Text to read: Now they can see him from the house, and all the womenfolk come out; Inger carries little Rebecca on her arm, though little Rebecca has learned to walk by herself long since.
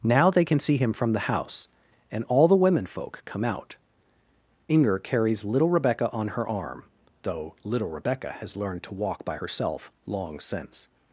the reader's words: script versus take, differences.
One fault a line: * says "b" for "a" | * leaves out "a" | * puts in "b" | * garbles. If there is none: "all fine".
all fine